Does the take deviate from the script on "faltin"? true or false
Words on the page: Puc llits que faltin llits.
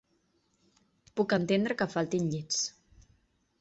false